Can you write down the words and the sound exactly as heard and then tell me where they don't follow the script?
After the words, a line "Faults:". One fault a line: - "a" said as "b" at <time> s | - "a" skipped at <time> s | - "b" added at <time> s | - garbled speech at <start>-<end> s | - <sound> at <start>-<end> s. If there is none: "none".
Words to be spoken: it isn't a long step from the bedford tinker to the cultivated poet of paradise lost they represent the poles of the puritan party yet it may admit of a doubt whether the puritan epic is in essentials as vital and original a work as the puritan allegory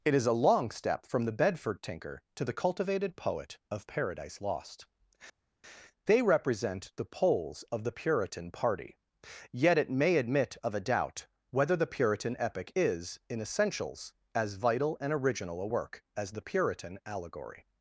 it is a long step from the bedford tinker to the cultivated poet of paradise lost they represent the poles of the puritan party yet it may admit of a doubt whether the puritan epic is in essentials as vital and original a work as the puritan allegory
Faults:
- "isn't" said as "is" at 0.1 s